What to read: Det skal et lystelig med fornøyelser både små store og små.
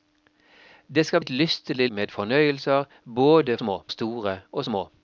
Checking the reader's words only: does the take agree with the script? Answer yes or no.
yes